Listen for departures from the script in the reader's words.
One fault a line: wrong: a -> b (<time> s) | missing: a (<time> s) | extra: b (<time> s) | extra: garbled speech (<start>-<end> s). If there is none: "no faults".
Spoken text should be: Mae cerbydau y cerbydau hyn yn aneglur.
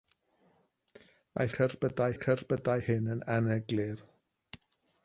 no faults